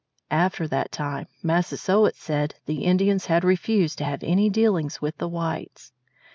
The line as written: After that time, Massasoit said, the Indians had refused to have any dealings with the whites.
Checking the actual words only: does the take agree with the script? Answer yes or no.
yes